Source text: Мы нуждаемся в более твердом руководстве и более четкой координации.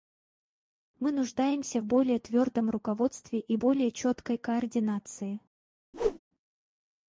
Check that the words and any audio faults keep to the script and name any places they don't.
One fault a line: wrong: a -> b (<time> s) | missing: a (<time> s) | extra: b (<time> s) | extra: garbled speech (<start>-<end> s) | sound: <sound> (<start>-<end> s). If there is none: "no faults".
sound: whoosh (5.9-6.2 s)